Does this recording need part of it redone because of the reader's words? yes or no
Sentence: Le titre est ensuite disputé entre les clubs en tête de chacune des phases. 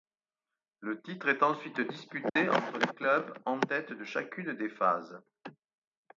no